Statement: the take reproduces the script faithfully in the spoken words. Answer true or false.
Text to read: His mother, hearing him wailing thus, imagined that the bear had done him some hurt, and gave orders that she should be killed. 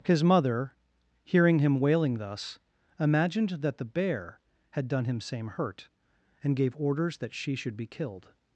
false